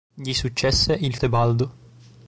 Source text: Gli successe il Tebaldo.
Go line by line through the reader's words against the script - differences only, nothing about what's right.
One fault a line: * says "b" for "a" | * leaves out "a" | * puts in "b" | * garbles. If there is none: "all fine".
all fine